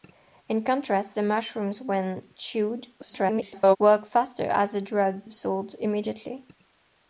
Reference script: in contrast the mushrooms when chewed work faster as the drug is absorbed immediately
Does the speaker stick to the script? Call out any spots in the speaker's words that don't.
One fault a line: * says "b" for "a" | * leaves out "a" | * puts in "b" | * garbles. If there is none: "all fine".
* garbles
* leaves out "is"